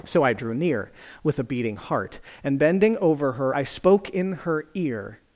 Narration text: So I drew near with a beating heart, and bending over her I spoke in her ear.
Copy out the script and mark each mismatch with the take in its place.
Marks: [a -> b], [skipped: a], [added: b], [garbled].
So I drew near with a beating heart, and bending over her I spoke in her ear.